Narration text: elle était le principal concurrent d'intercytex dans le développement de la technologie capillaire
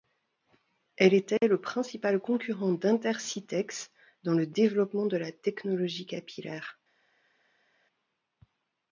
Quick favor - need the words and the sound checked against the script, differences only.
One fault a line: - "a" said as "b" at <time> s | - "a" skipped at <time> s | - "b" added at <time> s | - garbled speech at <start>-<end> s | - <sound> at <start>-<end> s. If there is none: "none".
none